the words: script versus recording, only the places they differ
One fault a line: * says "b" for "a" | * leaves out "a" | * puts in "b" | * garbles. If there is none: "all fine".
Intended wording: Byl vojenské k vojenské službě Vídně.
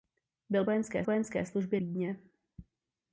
all fine